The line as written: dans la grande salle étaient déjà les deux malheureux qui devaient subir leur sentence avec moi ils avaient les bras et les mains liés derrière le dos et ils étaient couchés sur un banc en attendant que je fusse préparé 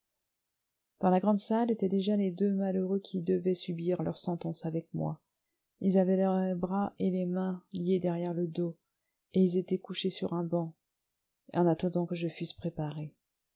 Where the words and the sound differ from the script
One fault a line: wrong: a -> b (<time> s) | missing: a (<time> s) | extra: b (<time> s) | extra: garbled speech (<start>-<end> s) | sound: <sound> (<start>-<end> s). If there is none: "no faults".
no faults